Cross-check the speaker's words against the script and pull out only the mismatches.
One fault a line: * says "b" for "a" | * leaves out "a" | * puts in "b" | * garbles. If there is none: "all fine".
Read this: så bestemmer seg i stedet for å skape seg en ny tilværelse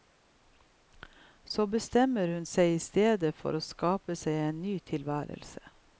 * puts in "hun"